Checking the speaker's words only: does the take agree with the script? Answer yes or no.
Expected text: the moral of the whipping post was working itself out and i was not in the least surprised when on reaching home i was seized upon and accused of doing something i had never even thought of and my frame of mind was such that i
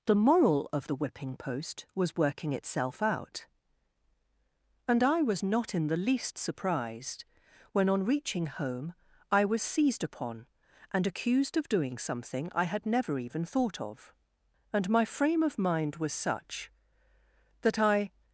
yes